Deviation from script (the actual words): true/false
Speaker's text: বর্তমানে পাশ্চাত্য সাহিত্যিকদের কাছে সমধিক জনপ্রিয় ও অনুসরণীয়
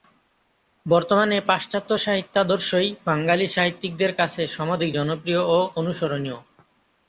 true